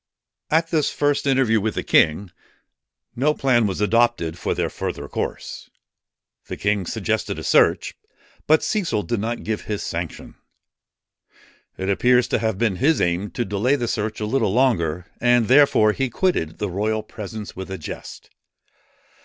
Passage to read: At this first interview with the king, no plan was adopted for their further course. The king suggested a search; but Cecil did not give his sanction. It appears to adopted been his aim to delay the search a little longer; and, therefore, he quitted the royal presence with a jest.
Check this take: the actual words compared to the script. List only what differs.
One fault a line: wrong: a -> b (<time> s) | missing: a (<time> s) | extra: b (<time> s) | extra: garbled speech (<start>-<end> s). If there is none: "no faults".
wrong: adopted -> have (12.4 s)